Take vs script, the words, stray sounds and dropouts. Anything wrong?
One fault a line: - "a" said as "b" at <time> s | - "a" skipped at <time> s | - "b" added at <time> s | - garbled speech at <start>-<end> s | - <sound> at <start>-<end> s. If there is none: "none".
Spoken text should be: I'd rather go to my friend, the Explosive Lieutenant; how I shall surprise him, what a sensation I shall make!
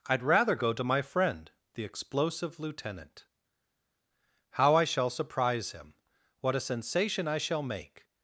none